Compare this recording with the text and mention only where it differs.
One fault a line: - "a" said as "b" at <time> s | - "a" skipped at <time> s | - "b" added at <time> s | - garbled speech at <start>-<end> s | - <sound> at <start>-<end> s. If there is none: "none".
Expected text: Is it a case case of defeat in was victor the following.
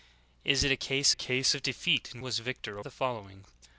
none